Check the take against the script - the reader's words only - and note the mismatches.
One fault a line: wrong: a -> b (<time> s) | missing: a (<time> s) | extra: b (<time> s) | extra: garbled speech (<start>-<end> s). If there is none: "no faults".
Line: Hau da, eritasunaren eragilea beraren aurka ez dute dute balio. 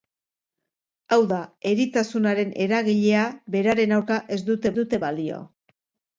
no faults